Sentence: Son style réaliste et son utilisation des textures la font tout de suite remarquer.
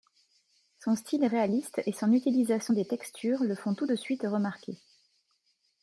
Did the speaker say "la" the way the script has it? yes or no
no